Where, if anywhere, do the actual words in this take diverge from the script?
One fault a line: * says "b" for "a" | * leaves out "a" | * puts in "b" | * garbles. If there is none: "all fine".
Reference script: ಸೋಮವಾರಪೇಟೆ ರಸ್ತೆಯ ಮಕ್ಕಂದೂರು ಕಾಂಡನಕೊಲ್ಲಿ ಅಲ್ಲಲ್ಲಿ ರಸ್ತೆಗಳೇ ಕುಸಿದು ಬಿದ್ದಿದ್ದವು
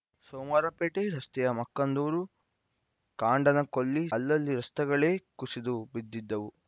all fine